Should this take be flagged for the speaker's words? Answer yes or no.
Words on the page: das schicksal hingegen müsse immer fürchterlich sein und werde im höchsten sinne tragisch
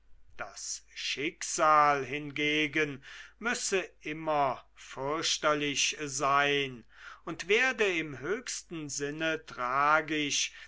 no